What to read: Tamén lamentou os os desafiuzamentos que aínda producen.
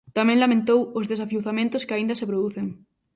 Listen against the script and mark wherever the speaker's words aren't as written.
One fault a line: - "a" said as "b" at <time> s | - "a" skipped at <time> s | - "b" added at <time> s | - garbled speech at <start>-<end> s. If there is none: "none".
- "os" skipped at 1.1 s
- "se" added at 2.2 s